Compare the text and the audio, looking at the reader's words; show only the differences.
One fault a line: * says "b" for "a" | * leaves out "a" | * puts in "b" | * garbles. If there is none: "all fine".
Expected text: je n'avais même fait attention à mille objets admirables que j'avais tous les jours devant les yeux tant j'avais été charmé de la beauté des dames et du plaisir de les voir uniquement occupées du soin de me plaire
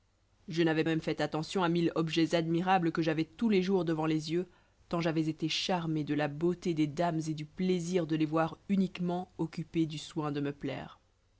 all fine